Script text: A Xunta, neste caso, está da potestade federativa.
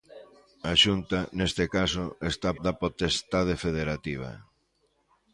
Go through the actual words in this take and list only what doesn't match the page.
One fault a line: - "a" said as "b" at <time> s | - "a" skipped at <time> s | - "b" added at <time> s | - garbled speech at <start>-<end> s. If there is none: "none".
none